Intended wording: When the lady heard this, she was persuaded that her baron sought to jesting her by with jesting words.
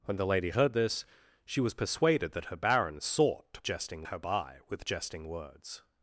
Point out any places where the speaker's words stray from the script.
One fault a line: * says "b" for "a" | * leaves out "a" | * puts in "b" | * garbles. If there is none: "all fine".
all fine